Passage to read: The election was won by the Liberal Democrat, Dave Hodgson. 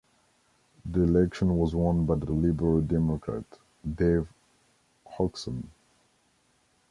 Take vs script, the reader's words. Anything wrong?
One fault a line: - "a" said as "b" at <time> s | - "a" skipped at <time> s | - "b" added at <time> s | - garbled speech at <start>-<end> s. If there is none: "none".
- "the" added at 2.2 s